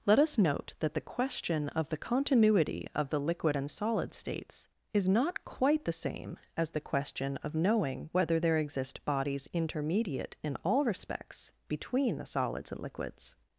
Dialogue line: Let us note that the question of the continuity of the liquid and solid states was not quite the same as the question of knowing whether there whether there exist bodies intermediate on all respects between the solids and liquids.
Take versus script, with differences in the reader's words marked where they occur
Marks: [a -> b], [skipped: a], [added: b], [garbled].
Let us note that the question of the continuity of the liquid and solid states [was -> is] not quite the same as the question of knowing whether there [skipped: whether there] exist bodies intermediate [on -> in] all respects between the solids and liquids.